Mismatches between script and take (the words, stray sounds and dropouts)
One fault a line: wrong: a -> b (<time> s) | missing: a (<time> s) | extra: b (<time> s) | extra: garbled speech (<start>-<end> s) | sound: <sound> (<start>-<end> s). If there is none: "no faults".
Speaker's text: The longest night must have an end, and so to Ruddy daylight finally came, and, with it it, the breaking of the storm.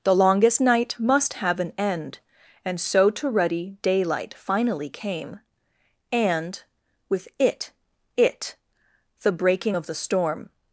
no faults